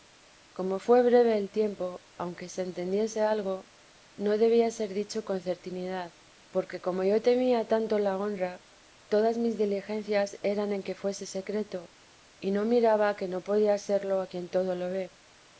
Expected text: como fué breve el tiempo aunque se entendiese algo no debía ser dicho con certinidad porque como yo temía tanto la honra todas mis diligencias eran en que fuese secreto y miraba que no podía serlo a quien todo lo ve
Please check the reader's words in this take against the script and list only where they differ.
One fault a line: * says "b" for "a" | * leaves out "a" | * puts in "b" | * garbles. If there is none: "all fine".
* puts in "no"